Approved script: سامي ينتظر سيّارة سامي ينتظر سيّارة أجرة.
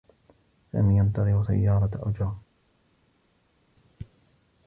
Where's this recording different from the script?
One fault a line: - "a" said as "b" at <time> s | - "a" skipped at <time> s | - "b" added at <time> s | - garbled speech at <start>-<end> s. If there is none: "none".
- "سامي ينتظر سيّارة" skipped at 1.9 s